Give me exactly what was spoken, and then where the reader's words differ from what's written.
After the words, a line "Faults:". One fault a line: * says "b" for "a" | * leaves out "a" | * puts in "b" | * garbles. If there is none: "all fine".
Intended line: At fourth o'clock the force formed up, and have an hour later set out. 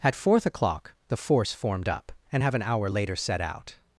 At fourth o'clock the force formed up, and have an hour later set out.
Faults:
all fine